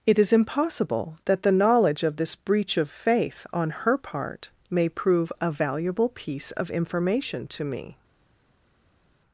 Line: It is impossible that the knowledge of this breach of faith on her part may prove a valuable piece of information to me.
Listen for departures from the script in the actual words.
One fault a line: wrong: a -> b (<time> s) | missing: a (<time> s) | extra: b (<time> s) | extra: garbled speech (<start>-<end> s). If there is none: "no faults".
no faults